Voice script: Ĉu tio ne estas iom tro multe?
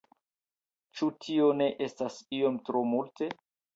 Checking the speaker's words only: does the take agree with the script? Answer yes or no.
yes